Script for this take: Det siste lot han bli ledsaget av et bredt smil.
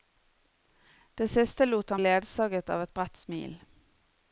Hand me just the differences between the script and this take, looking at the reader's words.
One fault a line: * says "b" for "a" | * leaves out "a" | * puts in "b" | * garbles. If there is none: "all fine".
* leaves out "bli"